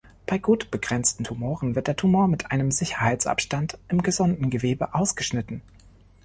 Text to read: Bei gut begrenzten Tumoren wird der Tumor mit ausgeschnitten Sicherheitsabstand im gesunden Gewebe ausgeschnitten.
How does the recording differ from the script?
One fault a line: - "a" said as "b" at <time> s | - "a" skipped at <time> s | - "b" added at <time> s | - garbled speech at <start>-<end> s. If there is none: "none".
- "ausgeschnitten" said as "einem" at 2.5 s